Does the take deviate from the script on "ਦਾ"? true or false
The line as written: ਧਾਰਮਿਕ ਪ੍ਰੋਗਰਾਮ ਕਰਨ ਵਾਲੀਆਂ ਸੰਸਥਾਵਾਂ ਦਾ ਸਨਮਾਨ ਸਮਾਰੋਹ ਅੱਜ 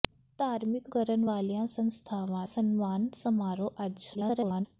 true